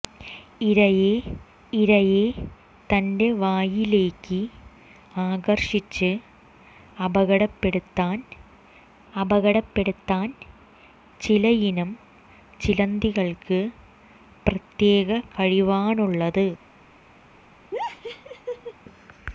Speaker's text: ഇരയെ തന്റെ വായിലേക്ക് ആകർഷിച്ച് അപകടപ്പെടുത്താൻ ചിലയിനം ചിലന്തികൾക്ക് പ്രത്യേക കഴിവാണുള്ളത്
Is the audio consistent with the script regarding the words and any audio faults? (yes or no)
no